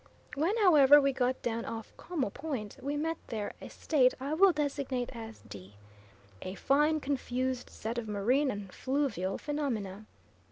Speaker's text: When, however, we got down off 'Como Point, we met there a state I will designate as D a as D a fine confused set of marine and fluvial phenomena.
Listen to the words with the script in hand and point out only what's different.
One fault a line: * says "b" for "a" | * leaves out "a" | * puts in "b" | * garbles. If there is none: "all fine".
* leaves out "as D a"